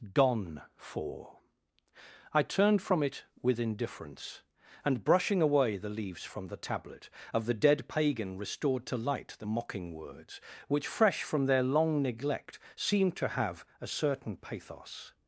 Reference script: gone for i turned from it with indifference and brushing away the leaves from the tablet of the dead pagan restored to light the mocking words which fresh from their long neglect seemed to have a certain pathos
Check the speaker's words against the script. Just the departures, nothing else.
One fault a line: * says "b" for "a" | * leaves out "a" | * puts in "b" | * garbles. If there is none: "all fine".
all fine